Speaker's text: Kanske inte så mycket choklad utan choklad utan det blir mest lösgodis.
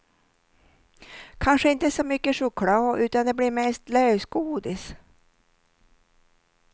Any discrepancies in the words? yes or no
yes